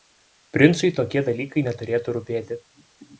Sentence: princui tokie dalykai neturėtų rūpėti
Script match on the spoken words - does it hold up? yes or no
yes